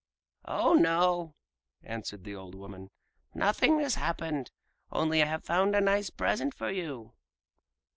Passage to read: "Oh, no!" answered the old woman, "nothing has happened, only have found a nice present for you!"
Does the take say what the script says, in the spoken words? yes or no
yes